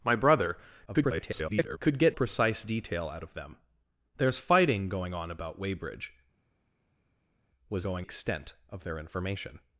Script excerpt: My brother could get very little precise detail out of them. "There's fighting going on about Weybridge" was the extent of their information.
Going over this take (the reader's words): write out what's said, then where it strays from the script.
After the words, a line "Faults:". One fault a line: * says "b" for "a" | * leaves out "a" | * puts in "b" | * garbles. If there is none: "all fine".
My brother [garbled] could get precise detail out of them. "There's fighting going on about Weybridge" was going extent of their information.
Faults:
* garbles
* leaves out "very little"
* says "going" for "the"